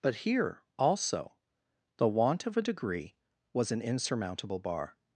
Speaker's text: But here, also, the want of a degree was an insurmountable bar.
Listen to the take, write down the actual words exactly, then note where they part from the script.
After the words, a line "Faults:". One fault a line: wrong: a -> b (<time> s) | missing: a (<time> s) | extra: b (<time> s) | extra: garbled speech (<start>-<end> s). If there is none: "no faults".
But here, also, the want of a degree was an insurmountable bar.
Faults:
no faults